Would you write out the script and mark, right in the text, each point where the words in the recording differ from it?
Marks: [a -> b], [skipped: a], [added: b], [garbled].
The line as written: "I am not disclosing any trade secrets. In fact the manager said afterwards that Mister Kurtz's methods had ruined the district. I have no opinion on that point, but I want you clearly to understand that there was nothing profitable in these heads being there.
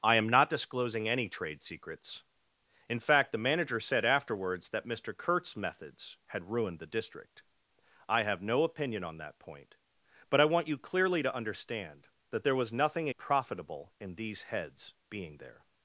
"I am not disclosing any trade secrets. In fact the manager said afterwards that Mister Kurtz's methods had ruined the district. I have no opinion on that point, but I want you clearly to understand that there was nothing profitable in these heads being there.